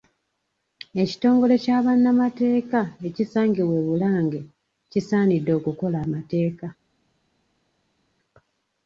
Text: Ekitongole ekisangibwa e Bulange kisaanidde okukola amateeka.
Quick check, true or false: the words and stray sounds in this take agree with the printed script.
false